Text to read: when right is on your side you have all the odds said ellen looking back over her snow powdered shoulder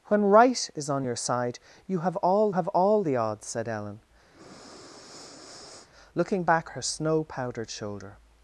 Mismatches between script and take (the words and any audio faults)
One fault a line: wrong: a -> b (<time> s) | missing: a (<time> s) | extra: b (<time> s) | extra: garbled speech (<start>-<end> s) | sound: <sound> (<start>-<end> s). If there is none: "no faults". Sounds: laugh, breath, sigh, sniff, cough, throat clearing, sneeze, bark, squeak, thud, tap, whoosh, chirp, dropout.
extra: have all (2.5 s)
sound: breath (4.3-5.9 s)
missing: over (6.7 s)